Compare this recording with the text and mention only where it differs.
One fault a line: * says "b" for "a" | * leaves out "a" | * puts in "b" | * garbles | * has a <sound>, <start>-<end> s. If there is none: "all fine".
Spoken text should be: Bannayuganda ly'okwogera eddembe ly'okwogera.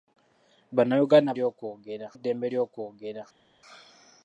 all fine